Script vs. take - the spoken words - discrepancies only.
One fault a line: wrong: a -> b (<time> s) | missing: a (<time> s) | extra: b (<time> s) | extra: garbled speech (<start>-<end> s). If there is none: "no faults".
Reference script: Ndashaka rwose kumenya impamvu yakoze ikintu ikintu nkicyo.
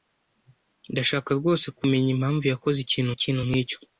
no faults